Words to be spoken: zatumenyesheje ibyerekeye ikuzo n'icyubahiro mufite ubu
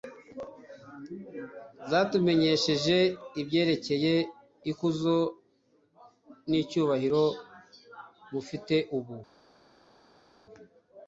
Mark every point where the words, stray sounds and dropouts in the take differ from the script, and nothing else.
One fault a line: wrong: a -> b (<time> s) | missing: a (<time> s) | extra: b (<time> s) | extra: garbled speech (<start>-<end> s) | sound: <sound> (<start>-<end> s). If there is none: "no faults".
no faults